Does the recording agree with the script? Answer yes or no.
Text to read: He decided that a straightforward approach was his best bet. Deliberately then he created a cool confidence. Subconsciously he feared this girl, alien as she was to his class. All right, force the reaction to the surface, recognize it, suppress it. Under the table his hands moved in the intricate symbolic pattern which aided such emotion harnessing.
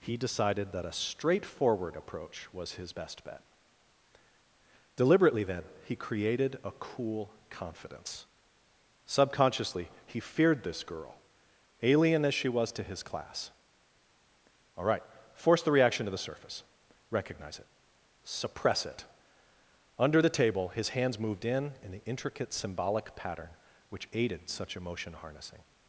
no